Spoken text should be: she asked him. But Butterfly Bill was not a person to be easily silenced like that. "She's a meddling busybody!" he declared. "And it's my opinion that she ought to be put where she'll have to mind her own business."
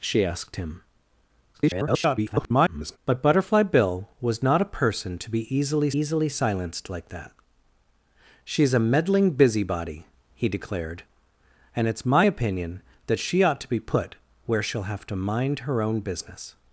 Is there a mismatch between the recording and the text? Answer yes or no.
yes